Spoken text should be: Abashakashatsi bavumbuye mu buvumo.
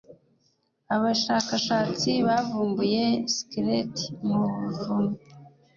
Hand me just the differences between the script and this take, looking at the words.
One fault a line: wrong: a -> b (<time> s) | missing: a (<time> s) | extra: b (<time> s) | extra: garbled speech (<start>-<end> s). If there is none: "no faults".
extra: skeleti (3.3 s)